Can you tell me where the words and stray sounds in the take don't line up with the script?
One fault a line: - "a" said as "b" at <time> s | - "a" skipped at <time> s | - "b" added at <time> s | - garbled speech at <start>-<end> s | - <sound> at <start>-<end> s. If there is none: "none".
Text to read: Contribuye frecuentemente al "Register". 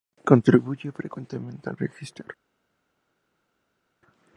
none